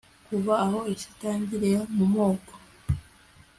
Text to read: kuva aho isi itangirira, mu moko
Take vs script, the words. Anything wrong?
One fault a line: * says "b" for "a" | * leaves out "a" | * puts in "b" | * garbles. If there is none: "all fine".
all fine